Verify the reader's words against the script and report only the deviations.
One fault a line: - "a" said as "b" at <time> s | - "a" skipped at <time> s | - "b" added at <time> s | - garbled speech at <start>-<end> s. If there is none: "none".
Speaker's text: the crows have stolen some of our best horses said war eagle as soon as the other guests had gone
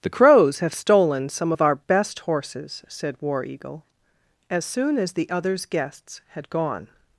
- "other" said as "others" at 5.3 s